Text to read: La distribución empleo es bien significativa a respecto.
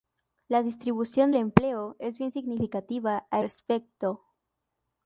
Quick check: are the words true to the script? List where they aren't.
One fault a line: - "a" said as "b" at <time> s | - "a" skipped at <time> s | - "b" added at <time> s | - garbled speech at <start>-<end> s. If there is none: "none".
none